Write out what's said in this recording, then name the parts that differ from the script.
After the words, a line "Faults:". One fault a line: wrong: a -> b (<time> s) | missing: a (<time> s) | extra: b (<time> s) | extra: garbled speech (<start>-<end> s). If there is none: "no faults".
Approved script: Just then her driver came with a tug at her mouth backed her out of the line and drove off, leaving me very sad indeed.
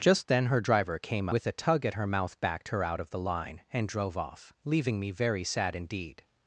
Just then her driver came with a tug at her mouth backed her out of the line and drove off, leaving me very sad indeed.
Faults:
no faults